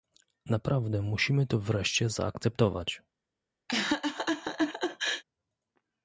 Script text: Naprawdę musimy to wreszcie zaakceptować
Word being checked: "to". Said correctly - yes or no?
yes